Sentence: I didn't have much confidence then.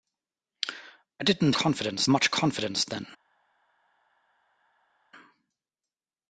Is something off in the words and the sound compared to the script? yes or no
yes